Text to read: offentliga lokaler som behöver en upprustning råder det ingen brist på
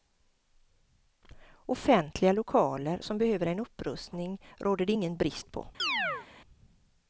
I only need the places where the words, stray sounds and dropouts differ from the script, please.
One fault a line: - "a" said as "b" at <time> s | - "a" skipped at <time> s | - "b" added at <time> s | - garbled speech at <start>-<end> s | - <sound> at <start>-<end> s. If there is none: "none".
- chirp at 5.8-6.3 s